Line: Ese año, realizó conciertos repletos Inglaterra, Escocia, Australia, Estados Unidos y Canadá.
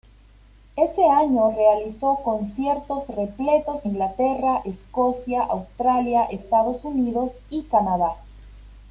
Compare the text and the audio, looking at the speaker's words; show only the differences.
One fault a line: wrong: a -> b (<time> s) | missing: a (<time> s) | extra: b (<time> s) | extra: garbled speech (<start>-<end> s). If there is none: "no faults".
no faults